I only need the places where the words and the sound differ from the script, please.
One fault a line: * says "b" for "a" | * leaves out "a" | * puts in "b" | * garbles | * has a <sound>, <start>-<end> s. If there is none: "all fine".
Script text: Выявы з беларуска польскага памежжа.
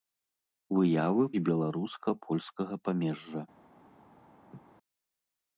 * has a laugh, 4.5-4.6 s